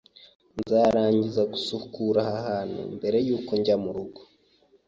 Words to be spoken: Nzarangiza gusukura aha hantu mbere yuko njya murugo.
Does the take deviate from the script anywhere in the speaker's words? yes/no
no